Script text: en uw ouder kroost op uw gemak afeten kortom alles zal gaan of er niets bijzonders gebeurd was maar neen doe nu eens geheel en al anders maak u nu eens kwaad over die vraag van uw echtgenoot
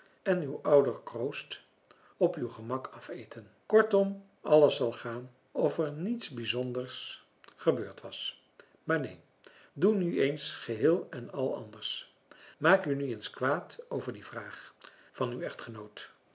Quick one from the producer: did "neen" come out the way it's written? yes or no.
yes